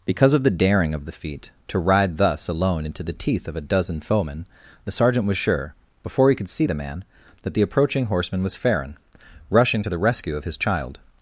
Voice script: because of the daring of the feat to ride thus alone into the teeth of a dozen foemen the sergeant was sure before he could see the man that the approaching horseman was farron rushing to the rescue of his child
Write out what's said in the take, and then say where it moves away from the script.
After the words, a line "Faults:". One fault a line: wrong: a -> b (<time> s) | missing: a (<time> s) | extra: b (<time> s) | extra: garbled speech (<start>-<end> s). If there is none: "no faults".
because of the daring of the feat to ride thus alone into the teeth of a dozen foemen the sergeant was sure before he could see the man that the approaching horseman was farron rushing to the rescue of his child
Faults:
no faults